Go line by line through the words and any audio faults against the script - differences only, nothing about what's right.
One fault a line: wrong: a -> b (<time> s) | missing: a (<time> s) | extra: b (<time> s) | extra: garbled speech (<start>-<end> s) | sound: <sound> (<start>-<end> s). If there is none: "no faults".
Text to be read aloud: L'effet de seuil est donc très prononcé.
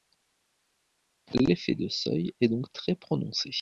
no faults